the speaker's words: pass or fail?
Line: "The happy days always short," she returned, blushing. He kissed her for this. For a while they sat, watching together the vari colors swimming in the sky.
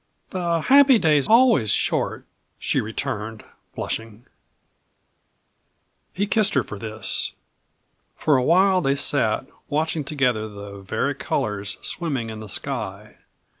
pass